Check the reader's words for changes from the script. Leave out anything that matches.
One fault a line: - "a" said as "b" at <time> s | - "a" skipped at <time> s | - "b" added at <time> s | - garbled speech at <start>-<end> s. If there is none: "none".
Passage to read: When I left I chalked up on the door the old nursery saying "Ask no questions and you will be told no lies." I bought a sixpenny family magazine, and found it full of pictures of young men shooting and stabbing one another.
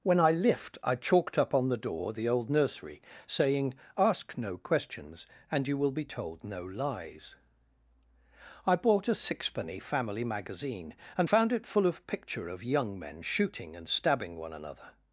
- "left" said as "lift" at 0.3 s
- "pictures" said as "picture" at 12.1 s